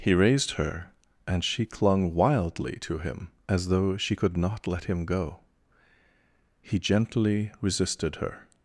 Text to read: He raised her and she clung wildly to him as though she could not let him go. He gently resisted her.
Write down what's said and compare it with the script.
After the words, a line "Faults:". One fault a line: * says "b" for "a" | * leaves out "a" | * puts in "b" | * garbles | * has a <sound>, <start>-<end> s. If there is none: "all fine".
He raised her and she clung wildly to him as though she could not let him go. He gently resisted her.
Faults:
all fine